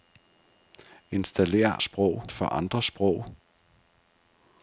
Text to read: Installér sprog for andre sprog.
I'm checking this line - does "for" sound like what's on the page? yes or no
yes